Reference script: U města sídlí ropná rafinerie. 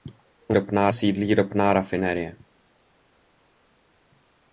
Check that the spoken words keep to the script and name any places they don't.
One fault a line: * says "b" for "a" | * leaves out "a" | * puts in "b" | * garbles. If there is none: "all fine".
* says "ropná" for "města"